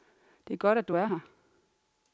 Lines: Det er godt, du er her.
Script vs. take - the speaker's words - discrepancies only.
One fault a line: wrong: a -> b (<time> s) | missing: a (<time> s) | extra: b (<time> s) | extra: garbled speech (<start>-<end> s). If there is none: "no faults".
extra: at (0.8 s)